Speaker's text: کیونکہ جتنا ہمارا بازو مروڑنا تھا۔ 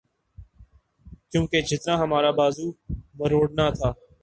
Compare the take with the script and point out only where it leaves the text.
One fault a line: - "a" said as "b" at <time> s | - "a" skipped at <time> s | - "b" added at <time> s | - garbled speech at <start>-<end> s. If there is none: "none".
none